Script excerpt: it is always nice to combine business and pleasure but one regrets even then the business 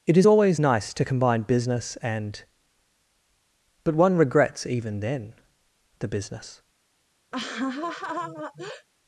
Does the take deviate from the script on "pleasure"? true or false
true